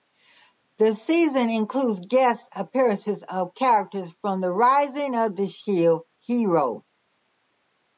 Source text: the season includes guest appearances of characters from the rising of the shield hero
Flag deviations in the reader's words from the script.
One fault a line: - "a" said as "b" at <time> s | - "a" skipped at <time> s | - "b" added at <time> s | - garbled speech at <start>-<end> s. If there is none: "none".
none